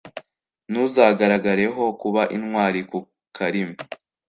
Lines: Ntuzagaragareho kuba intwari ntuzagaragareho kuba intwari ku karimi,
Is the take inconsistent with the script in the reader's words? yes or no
yes